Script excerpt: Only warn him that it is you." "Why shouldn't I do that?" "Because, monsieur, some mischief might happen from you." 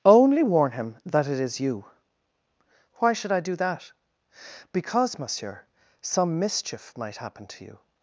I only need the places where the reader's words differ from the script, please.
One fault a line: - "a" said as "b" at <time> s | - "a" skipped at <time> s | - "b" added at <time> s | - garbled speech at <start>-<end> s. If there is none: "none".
- "shouldn't" said as "should" at 3.1 s
- "from" said as "to" at 7.5 s